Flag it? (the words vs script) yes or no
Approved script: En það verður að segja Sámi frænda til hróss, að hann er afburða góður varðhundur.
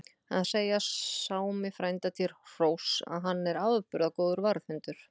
yes